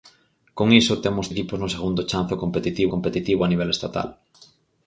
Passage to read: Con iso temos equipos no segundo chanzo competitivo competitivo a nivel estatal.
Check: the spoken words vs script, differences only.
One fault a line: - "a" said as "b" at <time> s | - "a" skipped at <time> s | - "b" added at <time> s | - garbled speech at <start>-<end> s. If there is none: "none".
none